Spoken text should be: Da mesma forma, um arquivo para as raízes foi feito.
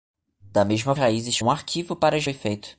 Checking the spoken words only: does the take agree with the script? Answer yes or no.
no